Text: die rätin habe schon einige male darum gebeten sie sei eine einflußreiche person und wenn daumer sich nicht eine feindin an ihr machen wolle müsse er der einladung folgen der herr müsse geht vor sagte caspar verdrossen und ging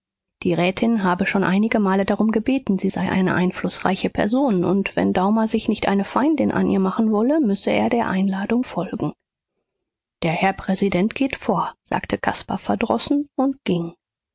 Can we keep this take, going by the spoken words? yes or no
no